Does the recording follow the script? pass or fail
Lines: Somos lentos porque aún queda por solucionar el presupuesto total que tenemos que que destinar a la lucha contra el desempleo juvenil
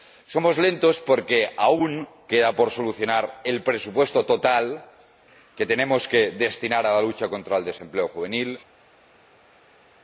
fail